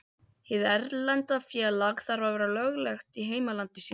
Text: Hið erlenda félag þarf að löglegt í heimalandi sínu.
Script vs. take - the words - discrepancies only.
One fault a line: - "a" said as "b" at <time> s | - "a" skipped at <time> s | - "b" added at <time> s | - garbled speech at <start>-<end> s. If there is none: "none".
- "vera" added at 2.4 s